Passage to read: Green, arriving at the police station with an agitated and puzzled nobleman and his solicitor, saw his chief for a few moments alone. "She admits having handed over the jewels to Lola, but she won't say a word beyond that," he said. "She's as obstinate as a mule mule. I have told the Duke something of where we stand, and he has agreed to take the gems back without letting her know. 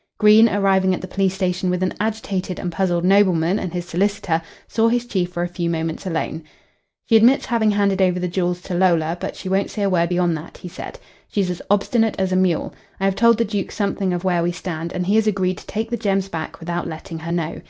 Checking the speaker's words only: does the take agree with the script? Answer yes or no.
no